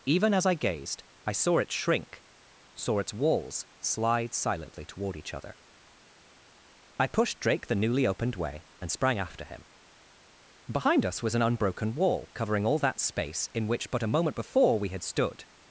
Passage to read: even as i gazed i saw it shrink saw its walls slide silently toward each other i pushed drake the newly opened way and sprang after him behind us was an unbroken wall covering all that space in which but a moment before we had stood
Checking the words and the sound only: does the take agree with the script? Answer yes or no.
yes